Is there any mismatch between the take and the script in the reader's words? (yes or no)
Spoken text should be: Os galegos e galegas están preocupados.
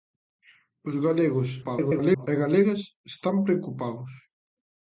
yes